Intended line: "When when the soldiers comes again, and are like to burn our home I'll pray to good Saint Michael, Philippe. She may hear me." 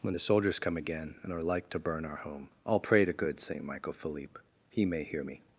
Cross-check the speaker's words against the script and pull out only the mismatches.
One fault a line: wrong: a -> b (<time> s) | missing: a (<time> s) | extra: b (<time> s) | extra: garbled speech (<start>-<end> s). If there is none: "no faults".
missing: when (0.1 s)
wrong: comes -> come (0.6 s)
wrong: She -> He (4.7 s)